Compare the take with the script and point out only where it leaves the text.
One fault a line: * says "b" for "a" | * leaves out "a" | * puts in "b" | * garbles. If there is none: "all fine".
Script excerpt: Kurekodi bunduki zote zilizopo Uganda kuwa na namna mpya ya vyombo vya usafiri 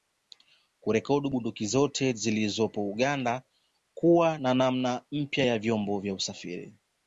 all fine